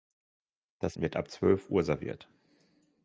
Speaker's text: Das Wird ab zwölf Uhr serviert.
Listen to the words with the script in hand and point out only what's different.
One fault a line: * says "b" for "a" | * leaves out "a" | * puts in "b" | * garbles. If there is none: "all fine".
all fine